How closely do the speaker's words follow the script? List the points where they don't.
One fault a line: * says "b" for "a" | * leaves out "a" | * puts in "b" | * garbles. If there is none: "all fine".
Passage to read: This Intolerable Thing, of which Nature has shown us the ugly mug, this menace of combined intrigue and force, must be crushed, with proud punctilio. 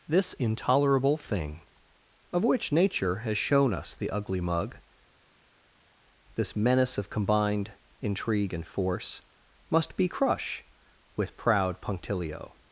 * says "crush" for "crushed"